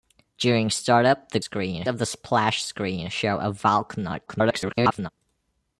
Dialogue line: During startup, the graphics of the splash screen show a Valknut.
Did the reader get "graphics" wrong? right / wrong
wrong